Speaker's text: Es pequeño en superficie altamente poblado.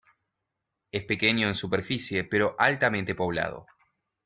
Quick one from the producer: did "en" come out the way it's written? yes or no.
yes